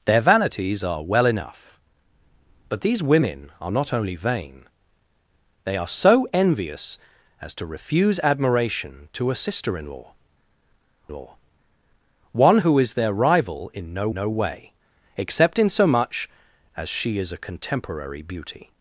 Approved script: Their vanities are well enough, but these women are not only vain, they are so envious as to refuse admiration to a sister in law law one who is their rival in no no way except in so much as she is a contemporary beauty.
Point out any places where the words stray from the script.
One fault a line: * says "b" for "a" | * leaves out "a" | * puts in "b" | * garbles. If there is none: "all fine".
all fine